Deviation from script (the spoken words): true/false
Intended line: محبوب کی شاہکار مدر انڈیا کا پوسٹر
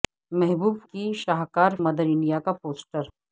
false